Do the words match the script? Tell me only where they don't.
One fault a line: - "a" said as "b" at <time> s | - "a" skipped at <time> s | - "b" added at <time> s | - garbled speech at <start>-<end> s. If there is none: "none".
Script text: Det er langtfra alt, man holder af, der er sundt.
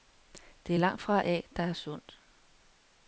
- "alt man holder" skipped at 1.2 s